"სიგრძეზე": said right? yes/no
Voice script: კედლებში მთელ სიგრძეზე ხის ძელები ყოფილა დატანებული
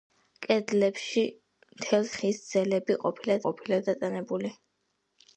no